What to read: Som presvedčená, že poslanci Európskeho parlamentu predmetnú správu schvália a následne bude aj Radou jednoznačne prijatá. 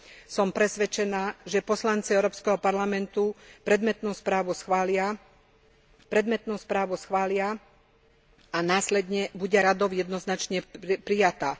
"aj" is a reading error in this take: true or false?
true